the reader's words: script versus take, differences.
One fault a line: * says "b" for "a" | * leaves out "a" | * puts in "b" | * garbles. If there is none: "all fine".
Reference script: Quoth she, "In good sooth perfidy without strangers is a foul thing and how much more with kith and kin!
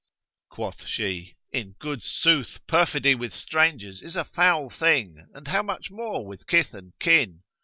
* says "with" for "without"